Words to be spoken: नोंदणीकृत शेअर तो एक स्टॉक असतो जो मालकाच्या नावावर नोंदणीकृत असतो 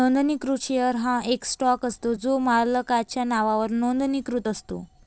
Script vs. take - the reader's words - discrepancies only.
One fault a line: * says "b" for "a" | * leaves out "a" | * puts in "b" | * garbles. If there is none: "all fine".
* says "हा" for "तो"